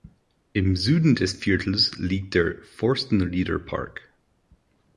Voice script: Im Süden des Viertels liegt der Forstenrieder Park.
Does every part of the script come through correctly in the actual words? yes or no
yes